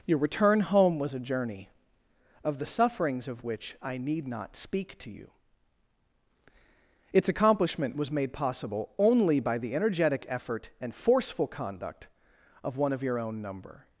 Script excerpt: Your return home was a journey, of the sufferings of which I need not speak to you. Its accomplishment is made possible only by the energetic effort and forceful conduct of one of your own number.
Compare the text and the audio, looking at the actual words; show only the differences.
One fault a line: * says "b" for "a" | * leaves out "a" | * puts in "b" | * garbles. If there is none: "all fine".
* says "was" for "is"